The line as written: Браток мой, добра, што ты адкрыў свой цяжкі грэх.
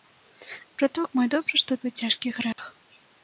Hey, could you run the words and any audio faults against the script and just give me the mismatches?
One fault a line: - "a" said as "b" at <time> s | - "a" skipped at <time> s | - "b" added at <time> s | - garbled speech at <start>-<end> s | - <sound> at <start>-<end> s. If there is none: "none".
- "ты адкрыў" skipped at 1.8 s
- dropout at 2.5-2.6 s